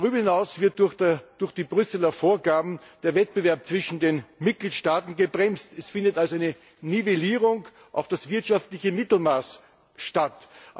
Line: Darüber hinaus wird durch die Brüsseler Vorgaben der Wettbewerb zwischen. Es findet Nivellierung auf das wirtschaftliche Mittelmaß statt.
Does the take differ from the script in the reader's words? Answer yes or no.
yes